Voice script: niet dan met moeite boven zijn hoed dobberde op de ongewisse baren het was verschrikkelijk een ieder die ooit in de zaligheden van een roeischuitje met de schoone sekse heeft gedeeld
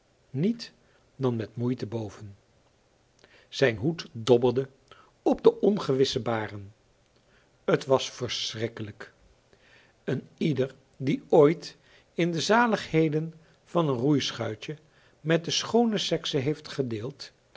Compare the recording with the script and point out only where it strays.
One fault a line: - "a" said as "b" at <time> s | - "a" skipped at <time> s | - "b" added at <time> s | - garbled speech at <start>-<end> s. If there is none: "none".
none